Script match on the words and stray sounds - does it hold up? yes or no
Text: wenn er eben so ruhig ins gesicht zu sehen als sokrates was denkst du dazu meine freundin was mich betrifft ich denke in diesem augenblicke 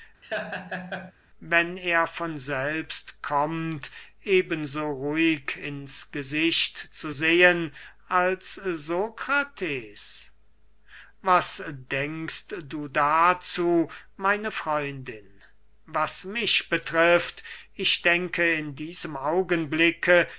no